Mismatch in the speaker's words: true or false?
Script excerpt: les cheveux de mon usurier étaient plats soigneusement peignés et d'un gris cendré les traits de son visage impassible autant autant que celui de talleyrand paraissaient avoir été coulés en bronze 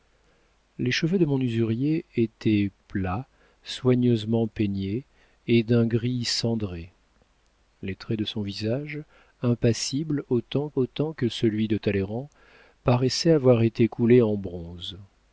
false